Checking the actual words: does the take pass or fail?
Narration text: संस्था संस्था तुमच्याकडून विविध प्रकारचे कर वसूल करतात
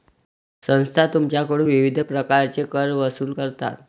fail